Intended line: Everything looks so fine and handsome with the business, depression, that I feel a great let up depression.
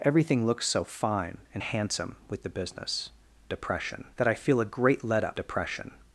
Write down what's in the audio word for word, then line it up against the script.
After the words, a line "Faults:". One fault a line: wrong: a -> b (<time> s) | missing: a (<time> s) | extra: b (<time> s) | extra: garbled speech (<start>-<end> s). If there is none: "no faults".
Everything looks so fine and handsome with the business, depression, that I feel a great let up depression.
Faults:
no faults